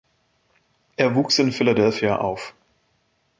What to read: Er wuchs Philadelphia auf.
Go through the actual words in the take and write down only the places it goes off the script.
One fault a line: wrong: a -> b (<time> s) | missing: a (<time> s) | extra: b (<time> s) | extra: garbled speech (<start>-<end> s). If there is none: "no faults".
extra: in (1.4 s)